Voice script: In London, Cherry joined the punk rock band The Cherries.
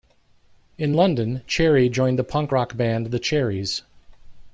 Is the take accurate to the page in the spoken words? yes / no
yes